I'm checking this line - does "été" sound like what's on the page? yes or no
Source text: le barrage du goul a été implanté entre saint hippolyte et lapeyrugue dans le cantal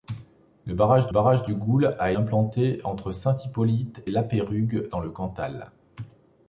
no